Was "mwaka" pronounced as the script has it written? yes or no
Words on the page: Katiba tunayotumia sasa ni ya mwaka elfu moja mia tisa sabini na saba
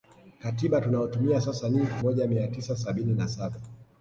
no